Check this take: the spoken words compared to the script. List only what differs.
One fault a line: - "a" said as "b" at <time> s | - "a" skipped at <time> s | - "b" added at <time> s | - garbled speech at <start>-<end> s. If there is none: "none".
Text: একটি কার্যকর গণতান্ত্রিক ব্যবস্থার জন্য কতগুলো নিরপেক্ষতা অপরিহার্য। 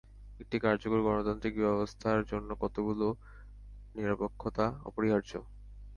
none